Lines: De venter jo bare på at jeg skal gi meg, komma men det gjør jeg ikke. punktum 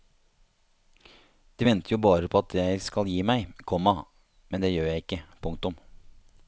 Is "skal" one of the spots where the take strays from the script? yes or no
no